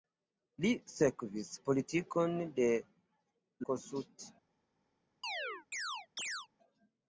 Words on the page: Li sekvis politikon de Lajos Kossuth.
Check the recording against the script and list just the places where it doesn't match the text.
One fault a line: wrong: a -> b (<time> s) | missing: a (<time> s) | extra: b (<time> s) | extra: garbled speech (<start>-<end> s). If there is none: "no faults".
missing: Lajos (2.7 s)